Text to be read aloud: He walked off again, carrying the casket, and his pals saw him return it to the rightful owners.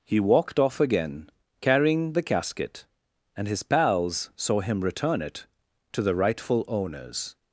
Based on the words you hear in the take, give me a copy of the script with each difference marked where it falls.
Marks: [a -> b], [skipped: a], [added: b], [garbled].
He walked off again, carrying the casket, and his pals saw him return it to the rightful owners.